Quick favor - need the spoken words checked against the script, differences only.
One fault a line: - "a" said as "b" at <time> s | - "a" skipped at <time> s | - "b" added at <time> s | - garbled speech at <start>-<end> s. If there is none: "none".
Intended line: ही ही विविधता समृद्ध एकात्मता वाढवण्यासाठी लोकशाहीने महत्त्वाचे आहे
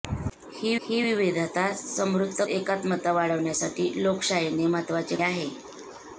none